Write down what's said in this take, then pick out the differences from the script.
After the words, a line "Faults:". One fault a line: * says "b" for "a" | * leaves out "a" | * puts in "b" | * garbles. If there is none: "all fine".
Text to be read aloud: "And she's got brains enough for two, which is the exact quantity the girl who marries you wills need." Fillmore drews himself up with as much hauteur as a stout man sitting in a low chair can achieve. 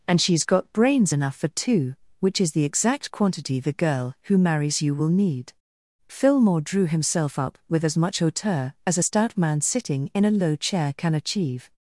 "And she's got brains enough for two, which is the exact quantity the girl who marries you will need." Fillmore drew himself up with as much hauteur as a stout man sitting in a low chair can achieve.
Faults:
* says "will" for "wills"
* says "drew" for "drews"